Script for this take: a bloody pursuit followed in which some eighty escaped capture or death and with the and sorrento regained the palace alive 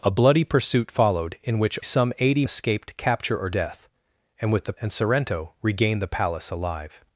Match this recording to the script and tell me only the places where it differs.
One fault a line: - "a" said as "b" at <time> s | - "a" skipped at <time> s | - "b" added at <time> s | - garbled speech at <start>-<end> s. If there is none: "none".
none